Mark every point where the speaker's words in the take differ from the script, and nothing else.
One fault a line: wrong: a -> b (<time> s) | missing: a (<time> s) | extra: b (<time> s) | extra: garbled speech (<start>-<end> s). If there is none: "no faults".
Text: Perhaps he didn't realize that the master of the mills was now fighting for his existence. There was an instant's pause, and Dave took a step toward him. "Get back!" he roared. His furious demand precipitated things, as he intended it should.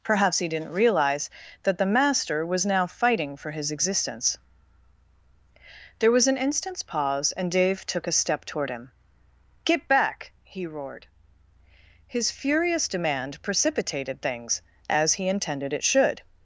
missing: of the mills (2.4 s)